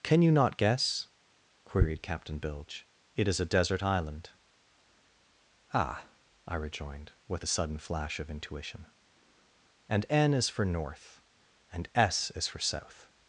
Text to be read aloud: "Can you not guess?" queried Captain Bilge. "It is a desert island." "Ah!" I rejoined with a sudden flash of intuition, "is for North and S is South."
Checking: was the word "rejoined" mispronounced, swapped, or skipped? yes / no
no